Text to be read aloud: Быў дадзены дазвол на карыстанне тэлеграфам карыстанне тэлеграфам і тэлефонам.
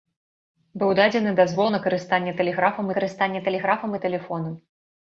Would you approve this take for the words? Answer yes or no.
yes